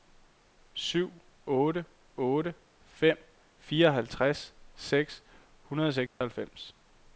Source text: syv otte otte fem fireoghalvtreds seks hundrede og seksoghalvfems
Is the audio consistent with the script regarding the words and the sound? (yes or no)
no